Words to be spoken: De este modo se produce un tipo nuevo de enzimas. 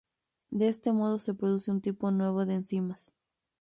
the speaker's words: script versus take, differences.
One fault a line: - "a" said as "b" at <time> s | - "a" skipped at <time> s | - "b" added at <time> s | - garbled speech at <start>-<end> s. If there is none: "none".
none